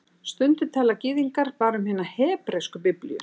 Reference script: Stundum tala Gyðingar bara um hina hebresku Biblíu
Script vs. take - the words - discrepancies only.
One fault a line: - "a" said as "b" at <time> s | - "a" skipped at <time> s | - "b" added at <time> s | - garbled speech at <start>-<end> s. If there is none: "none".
none